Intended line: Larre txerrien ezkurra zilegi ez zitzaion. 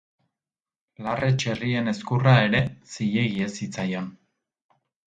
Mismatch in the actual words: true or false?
true